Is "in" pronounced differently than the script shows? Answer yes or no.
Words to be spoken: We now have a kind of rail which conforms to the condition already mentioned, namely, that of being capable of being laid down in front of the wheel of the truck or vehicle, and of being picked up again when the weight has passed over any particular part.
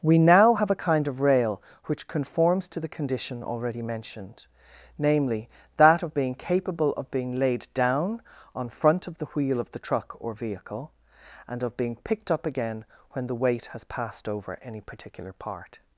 yes